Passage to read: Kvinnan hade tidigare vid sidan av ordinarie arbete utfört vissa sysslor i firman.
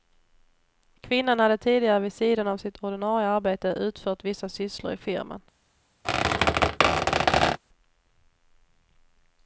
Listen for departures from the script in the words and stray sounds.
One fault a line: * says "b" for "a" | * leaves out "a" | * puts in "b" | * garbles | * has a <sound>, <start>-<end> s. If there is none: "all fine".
* puts in "sitt"
* has a squeak, 6.0-7.6 s